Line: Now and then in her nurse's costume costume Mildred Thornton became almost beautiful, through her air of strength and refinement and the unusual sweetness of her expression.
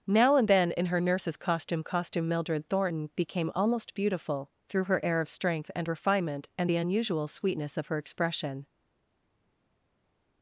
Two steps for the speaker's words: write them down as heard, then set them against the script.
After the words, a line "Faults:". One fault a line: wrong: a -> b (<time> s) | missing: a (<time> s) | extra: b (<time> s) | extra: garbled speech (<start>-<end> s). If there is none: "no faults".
Now and then in her nurse's costume costume Mildred Thornton became almost beautiful, through her air of strength and refinement and the unusual sweetness of her expression.
Faults:
no faults